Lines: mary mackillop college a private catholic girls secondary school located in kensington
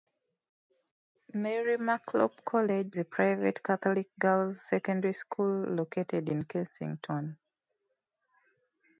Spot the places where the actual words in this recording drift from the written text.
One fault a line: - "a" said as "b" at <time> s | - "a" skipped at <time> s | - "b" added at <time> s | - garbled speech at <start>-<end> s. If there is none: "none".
none